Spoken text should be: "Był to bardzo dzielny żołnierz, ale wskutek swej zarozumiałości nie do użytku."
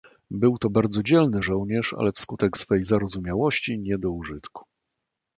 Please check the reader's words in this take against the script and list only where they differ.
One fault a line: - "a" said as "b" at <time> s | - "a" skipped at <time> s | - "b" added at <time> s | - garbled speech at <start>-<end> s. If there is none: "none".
none